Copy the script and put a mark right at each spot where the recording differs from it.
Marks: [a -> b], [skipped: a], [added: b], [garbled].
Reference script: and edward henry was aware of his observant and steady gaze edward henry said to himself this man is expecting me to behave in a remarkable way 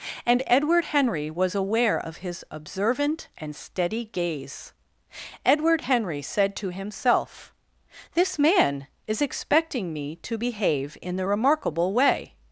and edward henry was aware of his observant and steady gaze edward henry said to himself this man is expecting me to behave in [a -> the] remarkable way